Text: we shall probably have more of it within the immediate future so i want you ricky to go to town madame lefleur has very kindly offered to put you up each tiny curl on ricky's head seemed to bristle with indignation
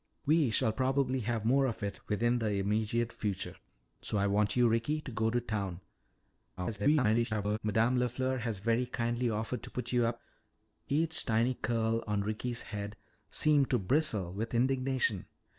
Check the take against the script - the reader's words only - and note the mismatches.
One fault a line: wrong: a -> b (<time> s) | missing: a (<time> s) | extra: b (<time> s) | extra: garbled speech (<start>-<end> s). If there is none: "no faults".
extra: garbled speech (6.6-7.6 s)